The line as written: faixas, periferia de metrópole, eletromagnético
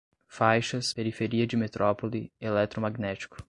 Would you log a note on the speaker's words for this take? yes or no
no